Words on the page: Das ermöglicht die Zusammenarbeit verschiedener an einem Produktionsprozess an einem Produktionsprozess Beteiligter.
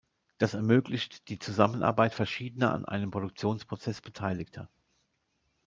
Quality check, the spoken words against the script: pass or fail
fail